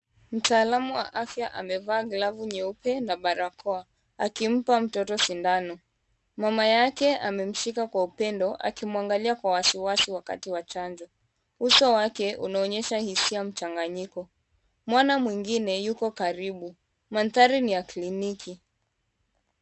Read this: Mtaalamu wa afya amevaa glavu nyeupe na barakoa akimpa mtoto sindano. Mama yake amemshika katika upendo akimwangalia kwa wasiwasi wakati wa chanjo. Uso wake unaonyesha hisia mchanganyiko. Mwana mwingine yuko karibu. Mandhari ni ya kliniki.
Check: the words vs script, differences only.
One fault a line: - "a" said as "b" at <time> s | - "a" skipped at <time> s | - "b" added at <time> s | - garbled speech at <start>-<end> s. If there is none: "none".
- "katika" said as "kwa" at 7.9 s